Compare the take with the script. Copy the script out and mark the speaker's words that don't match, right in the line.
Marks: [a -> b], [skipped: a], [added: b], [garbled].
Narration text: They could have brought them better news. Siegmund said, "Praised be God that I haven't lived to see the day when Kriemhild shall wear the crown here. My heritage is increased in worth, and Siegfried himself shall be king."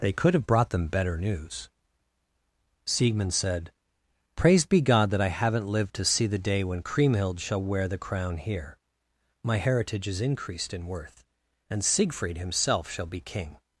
They could have brought them better news. Siegmund said, "Praised be God that I haven't lived to see the day when Kriemhild shall wear the crown here. My heritage is increased in worth, and Siegfried himself shall be king."